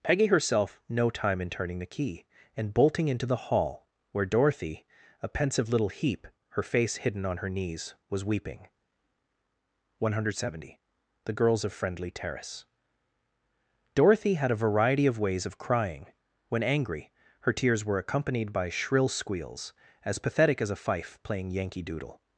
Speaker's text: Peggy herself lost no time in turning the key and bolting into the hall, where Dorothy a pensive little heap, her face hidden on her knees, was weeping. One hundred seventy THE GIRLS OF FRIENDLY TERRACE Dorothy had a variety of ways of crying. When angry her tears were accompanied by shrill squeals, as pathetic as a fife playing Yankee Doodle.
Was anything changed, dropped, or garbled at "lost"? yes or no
yes